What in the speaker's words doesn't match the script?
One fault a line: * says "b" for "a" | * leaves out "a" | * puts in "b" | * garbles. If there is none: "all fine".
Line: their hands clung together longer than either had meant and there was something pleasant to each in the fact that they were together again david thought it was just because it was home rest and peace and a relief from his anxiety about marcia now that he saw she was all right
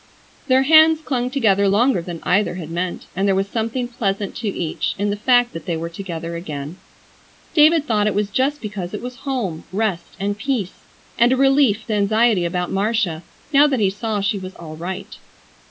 * leaves out "from his"